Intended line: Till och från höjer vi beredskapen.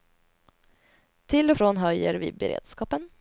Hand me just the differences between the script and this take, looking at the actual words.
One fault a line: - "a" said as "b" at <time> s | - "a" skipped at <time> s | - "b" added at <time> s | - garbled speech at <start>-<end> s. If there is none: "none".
none